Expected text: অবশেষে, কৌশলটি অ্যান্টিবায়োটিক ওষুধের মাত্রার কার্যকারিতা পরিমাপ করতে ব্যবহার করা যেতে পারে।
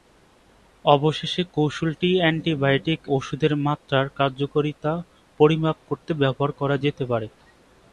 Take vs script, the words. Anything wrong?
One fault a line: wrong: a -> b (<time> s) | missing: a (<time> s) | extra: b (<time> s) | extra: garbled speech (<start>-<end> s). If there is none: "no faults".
no faults